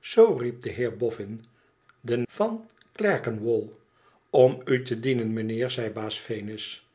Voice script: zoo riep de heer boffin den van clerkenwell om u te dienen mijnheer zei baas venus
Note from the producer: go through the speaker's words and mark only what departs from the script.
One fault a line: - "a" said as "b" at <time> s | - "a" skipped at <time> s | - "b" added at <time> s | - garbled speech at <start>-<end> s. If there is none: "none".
none